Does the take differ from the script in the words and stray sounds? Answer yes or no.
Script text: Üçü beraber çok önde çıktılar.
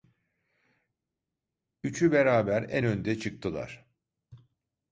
yes